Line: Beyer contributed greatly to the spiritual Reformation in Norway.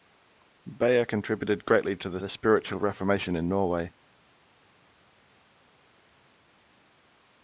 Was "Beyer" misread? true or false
false